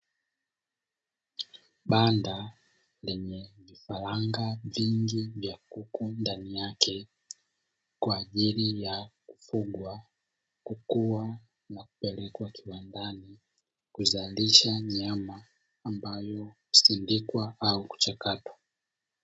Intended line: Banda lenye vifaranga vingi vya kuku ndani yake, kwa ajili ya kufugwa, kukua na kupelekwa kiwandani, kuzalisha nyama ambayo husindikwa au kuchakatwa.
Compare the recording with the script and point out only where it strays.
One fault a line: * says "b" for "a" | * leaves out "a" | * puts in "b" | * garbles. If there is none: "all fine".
all fine